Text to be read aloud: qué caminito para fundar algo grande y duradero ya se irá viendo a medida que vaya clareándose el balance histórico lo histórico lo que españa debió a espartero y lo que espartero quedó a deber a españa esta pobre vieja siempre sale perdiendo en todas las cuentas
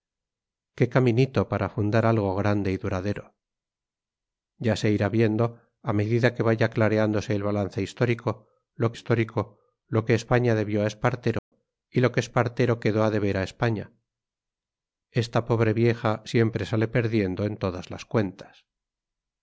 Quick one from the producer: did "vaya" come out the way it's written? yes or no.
yes